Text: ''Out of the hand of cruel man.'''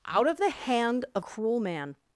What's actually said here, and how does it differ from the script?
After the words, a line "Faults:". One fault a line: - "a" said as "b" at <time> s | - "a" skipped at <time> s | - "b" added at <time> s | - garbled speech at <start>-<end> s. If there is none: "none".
''Out of the hand of cruel man.'''
Faults:
none